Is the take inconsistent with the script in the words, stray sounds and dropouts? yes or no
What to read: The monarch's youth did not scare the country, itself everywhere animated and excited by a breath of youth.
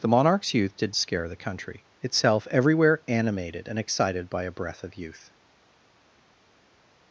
yes